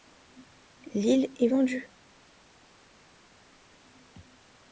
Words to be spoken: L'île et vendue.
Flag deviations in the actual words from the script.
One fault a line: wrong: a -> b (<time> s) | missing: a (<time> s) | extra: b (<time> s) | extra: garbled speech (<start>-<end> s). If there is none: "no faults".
no faults